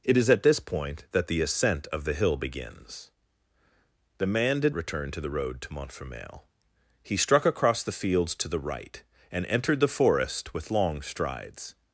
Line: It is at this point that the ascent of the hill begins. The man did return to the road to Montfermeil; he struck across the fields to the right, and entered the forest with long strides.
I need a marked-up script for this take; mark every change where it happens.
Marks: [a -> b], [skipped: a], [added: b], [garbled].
It is at this point that the ascent of the hill begins. The man did return to the road to Montfermeil; he struck across the fields to the right, and entered the forest with long strides.